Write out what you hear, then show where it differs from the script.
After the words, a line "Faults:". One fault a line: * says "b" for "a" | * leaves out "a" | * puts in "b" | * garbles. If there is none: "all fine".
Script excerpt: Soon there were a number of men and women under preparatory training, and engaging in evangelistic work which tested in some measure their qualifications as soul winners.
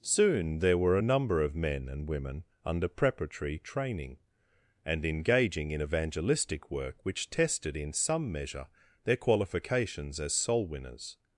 Soon there were a number of men and women under preparatory training, and engaging in evangelistic work which tested in some measure their qualifications as soul winners.
Faults:
all fine